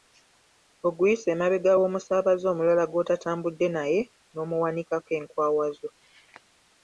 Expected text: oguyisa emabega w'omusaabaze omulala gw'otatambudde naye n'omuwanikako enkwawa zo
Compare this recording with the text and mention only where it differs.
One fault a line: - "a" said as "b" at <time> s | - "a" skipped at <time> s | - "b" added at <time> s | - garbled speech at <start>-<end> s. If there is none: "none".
none